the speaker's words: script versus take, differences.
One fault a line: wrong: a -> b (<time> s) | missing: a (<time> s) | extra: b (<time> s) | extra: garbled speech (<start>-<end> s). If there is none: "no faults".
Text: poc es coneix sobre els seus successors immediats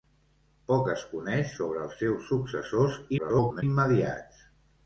extra: garbled speech (3.2-3.6 s)